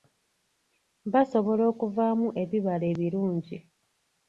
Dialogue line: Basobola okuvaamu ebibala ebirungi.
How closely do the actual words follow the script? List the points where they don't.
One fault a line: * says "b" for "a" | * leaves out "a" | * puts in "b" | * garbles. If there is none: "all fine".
all fine